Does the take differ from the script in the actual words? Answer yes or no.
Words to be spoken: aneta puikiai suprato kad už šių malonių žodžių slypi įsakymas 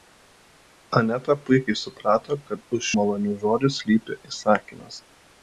yes